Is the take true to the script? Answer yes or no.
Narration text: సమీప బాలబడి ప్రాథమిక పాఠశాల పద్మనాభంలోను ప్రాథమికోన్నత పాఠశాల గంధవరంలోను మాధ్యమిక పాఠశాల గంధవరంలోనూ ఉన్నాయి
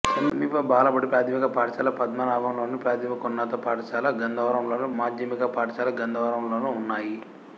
yes